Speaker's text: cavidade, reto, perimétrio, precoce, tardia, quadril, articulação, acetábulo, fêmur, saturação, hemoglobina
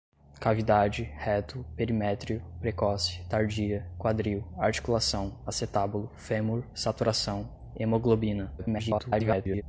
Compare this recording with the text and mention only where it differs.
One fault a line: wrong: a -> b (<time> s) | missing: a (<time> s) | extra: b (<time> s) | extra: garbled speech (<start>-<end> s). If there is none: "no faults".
extra: garbled speech (8.6-9.6 s)